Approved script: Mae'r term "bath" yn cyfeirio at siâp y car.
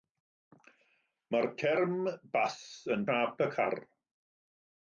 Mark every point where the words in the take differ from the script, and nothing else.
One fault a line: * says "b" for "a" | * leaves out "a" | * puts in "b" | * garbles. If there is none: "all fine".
* leaves out "cyfeirio at"